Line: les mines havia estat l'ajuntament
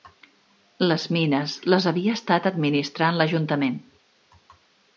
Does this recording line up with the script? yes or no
no